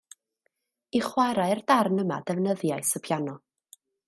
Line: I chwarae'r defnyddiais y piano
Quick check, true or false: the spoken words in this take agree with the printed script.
false